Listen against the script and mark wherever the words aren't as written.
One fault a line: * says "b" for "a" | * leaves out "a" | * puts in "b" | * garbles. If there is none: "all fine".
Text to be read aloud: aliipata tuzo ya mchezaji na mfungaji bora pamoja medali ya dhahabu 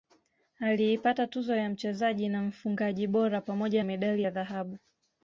all fine